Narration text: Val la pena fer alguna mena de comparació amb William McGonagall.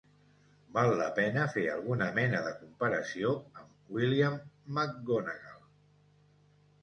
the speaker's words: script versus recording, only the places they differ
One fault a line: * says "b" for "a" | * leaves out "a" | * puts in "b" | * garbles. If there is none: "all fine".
all fine